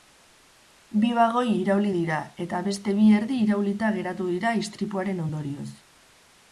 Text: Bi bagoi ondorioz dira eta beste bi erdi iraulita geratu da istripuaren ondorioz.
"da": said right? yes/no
no